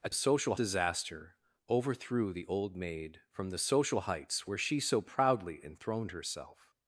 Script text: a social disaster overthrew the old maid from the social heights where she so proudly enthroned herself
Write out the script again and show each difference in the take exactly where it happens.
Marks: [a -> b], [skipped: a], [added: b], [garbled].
a social disaster overthrew the old maid from the social heights where she so proudly enthroned herself